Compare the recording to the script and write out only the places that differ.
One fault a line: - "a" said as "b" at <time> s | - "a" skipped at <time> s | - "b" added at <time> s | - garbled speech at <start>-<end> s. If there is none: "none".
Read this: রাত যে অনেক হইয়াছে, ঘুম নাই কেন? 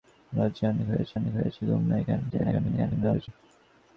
- "অনেক হইয়াছে" added at 1.2 s
- garbled speech at 2.3-3.3 s